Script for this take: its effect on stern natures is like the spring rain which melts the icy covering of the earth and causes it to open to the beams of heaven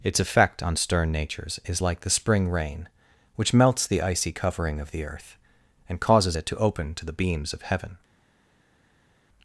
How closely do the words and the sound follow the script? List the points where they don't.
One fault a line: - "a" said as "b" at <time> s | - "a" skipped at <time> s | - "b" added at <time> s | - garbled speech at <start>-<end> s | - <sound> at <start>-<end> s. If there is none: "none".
none